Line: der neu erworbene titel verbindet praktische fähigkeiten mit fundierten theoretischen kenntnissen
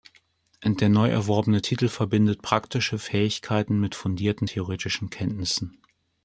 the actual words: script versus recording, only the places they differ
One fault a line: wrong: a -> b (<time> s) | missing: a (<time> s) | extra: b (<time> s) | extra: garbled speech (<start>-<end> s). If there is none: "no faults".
no faults